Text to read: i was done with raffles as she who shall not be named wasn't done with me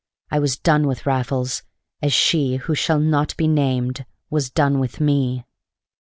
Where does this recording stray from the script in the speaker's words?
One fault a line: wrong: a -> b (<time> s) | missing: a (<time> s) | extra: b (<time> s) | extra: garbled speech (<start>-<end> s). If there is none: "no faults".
wrong: wasn't -> was (4.3 s)